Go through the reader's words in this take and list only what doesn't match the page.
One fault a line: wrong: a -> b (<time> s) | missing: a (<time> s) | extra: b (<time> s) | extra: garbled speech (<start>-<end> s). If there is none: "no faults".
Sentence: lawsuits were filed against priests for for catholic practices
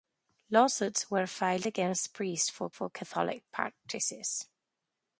no faults